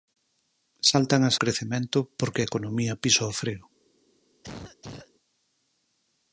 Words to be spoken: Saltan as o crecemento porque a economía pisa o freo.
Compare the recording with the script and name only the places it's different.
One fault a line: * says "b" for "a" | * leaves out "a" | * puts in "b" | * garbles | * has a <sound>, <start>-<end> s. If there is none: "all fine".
* has a cough, 4.4-5.1 s